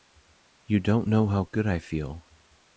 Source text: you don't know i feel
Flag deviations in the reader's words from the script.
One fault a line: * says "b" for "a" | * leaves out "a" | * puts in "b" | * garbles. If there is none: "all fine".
* puts in "how good"